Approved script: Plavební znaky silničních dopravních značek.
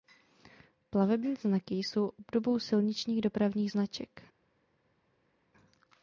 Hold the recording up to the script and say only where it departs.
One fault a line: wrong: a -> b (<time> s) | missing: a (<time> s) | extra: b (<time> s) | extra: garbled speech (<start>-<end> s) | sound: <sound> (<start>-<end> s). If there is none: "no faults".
extra: jsou obdobou (1.8 s)